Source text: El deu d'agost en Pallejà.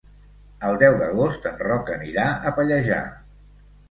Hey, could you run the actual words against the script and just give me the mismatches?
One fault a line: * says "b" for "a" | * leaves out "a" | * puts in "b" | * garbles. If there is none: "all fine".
* puts in "Roc anirà a"